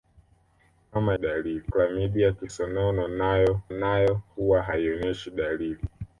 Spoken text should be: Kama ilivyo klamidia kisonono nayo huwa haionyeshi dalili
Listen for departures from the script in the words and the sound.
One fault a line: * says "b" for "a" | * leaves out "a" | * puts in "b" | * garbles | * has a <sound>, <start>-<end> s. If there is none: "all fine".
* says "dalili" for "ilivyo"
* puts in "nayo"